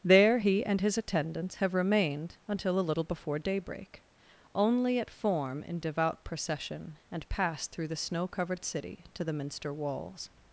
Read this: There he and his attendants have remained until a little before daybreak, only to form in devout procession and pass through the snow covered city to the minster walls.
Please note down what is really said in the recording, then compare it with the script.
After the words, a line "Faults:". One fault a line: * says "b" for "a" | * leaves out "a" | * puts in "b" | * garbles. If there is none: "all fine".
There he and his attendants have remained until a little before daybreak, only at form in devout procession and pass through the snow covered city to the minster walls.
Faults:
* says "at" for "to"